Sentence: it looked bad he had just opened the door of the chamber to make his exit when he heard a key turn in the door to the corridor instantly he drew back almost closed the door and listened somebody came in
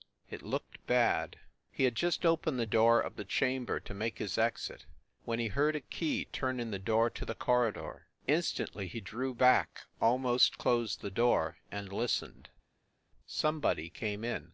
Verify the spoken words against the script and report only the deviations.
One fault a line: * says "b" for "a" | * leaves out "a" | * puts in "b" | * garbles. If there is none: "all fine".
all fine